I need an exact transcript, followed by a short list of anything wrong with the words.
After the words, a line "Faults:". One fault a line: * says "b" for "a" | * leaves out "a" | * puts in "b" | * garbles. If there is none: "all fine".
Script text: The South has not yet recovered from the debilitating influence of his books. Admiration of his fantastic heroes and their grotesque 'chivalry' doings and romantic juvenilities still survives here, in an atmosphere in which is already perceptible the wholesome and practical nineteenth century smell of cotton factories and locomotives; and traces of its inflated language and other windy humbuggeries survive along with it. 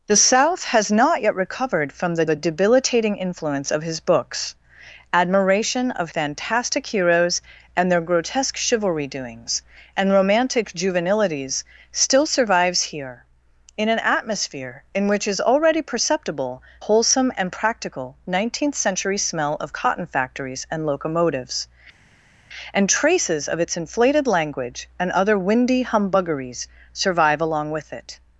The South has not yet recovered from the the debilitating influence of his books. Admiration of fantastic heroes and their grotesque 'chivalry' doings and romantic juvenilities still survives here, in an atmosphere in which is already perceptible wholesome and practical nineteenth century smell of cotton factories and locomotives; and traces of its inflated language and other windy humbuggeries survive along with it.
Faults:
* puts in "the"
* leaves out "his"
* leaves out "the"